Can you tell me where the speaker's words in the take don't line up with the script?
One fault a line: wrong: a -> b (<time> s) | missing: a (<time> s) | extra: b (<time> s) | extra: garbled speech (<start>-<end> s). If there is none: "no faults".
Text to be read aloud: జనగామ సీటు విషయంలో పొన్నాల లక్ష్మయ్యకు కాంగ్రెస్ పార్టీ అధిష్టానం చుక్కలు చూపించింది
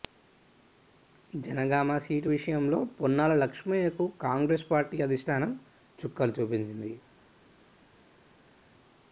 no faults